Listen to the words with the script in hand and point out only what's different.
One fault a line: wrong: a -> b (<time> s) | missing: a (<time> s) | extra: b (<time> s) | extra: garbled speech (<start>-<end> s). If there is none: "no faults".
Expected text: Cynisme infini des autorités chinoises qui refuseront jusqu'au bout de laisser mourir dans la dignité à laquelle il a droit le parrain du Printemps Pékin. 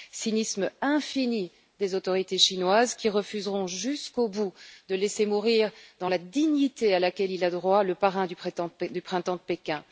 extra: de (8.8 s)